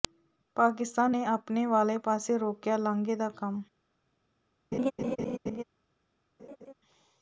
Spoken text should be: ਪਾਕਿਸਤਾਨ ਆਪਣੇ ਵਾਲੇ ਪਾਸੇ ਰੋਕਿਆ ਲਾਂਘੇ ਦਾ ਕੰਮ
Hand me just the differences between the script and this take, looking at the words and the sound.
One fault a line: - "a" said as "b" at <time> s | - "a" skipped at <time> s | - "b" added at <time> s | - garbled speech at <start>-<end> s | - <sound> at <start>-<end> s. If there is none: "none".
- "ਨੇ" added at 1.1 s
- laugh at 4.7-5.6 s
- laugh at 6.4-6.7 s